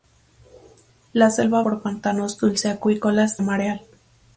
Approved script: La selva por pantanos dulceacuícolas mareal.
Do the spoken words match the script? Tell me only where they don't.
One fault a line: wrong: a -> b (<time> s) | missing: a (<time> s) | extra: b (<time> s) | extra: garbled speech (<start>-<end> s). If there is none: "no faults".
no faults